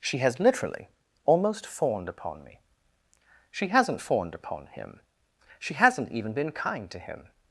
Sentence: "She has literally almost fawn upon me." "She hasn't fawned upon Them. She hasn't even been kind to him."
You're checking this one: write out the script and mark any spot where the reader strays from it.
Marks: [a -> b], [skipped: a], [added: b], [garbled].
"She has literally almost [fawn -> fawned] upon me." "She hasn't fawned upon [Them. -> HIM] She hasn't even been kind to him."